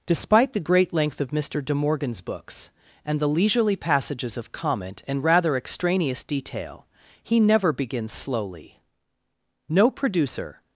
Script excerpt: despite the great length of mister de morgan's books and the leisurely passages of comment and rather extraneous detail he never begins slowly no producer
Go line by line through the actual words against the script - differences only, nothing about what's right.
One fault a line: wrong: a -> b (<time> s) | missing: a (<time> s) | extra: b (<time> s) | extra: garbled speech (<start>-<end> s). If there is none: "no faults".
no faults